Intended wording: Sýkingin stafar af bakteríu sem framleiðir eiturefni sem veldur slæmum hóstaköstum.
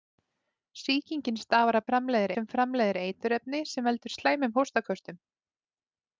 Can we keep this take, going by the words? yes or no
no